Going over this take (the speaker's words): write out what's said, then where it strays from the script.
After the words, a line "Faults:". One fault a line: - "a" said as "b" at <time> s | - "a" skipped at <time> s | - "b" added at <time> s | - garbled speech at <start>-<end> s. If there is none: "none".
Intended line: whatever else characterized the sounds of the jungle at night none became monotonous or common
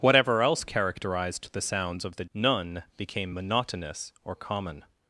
whatever else characterized the sounds of the none became monotonous or common
Faults:
- "jungle at night" skipped at 2.2 s